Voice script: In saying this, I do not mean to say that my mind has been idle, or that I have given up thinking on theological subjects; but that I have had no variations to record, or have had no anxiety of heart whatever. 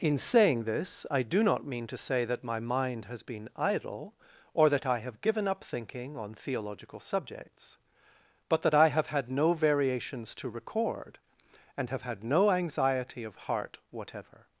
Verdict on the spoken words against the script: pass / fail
fail